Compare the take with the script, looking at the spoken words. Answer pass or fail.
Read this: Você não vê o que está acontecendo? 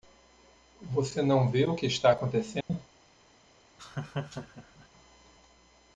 pass